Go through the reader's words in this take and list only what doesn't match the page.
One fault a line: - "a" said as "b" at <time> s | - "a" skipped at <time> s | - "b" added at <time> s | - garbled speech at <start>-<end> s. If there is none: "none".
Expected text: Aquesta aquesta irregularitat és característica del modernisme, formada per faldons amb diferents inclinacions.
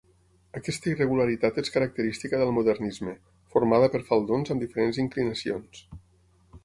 - "aquesta" skipped at 0.9 s